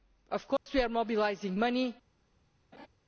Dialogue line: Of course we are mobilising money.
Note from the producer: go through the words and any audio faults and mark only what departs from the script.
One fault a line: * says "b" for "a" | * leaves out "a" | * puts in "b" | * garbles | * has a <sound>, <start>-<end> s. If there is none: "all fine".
* has a dropout, 0.6-0.7 s
* has a laugh, 2.7-2.9 s